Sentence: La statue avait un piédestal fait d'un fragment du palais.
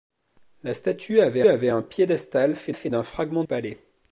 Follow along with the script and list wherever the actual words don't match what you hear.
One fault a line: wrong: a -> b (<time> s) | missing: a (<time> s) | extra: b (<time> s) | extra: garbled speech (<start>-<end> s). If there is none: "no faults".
extra: avait (1.5 s)
extra: fait (2.7 s)
missing: du (3.5 s)